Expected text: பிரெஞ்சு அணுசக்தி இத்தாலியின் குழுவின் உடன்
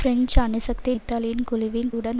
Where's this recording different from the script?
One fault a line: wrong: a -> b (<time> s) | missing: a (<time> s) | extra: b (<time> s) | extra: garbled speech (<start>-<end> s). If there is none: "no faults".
no faults